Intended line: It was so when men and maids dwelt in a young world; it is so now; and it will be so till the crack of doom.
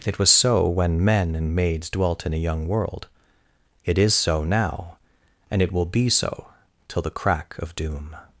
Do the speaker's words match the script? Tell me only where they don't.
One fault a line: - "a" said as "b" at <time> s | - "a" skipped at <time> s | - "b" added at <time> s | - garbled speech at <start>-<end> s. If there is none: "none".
none